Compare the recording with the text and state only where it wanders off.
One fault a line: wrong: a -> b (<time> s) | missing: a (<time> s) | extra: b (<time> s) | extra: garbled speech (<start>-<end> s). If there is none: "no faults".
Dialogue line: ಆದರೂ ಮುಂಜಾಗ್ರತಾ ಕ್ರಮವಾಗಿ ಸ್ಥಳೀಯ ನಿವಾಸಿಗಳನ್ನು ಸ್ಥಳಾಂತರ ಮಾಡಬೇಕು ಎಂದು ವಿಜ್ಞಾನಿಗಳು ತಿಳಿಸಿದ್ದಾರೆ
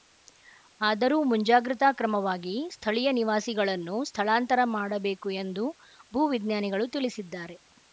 extra: ಭೂ (6.1 s)